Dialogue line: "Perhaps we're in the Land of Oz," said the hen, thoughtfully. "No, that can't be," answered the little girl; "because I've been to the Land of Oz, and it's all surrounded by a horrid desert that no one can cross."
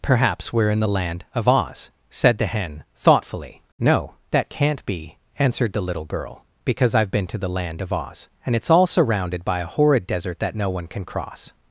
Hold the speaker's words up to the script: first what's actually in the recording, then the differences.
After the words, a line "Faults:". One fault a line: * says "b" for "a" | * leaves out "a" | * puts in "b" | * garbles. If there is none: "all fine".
"Perhaps we're in the Land of Oz," said the hen, thoughtfully. "No, that can't be," answered the little girl; "because I've been to the Land of Oz, and it's all surrounded by a horrid desert that no one can cross."
Faults:
all fine